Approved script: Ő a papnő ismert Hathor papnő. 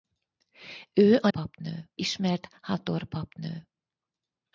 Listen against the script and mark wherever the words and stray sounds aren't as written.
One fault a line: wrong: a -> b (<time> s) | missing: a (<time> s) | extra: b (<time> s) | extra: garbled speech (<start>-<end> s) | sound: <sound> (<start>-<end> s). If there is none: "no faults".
no faults